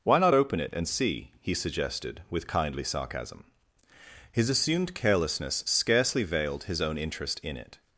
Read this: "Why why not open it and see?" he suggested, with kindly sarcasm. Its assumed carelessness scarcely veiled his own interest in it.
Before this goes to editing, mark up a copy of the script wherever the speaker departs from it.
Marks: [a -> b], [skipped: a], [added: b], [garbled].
"Why [skipped: why] not open it and see?" he suggested, with kindly sarcasm. [Its -> His] assumed carelessness scarcely veiled his own interest in it.